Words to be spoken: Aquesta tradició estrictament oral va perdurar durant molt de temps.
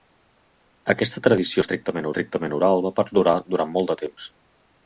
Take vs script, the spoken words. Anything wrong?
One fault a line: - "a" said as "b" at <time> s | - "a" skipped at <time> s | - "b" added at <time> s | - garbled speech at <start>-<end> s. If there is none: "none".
- "estrictament" added at 2.1 s